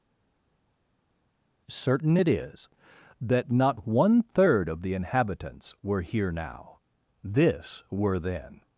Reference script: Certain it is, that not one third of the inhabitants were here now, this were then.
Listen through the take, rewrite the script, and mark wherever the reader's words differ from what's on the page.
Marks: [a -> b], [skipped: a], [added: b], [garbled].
Certain it is, that not one third of the inhabitants were here now, this were then.